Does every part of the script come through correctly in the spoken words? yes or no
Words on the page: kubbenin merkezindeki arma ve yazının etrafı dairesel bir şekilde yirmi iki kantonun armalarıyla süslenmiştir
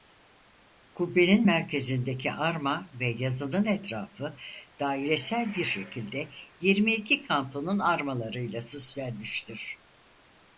yes